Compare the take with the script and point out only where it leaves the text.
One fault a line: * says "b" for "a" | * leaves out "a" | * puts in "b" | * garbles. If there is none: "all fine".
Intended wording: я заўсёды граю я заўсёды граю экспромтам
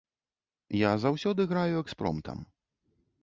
* leaves out "я заўсёды граю"